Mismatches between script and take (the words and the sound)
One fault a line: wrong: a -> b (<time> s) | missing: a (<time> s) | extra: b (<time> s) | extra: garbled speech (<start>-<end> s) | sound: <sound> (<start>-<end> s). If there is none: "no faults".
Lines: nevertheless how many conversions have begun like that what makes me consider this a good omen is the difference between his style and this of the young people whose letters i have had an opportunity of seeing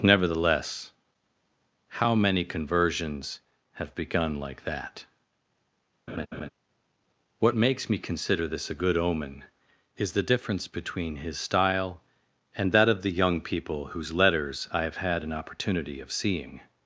sound: laugh (6.1-6.5 s)
wrong: this -> that (12.7 s)